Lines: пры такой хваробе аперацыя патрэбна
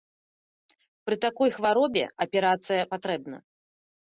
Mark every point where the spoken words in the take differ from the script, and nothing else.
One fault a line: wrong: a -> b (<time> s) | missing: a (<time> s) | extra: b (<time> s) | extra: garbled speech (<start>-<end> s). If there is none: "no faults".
no faults